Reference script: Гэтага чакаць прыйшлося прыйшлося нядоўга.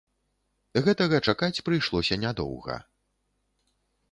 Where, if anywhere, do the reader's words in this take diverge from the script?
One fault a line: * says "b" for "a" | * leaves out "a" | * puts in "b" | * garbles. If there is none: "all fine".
* leaves out "прыйшлося"